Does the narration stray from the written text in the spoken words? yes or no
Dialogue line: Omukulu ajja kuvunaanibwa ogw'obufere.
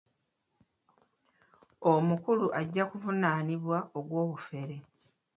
no